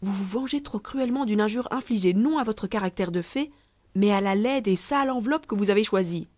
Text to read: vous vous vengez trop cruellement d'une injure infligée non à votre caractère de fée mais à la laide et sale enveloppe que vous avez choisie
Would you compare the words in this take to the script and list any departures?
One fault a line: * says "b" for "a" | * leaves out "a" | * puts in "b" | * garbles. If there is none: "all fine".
all fine